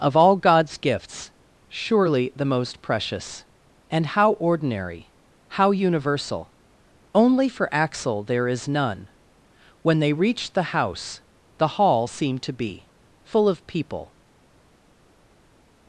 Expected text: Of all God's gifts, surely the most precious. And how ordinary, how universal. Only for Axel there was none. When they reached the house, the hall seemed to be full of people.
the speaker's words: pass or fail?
fail